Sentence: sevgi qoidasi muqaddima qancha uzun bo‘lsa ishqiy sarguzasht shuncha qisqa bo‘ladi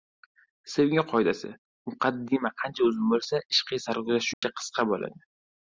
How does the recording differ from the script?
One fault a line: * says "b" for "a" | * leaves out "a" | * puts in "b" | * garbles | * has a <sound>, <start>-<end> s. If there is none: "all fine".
* has a dropout, 4.3-4.4 s